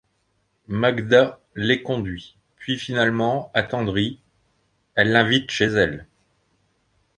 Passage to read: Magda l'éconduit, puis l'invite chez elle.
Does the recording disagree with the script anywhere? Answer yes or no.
yes